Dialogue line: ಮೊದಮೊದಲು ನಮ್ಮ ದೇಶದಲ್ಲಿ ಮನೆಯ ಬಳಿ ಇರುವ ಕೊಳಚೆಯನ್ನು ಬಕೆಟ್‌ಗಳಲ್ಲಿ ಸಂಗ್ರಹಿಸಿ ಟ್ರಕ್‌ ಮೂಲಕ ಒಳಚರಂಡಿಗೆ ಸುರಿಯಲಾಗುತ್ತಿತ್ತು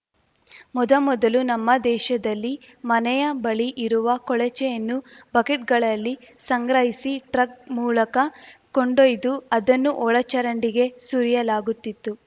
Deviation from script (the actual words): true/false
true